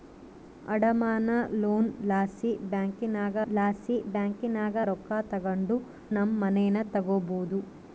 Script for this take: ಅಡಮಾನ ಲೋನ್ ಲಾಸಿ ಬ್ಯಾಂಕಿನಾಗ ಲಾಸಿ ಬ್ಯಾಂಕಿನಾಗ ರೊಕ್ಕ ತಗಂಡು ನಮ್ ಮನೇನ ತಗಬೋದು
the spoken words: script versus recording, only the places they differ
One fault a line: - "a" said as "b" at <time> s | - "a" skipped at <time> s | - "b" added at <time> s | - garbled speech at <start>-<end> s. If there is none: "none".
none